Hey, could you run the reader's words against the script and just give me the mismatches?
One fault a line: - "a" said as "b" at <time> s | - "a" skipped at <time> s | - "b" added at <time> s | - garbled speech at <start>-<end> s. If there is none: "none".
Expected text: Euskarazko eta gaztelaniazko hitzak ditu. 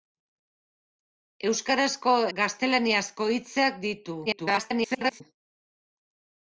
- "eta" skipped at 2.1 s
- garbled speech at 4.3-5.2 s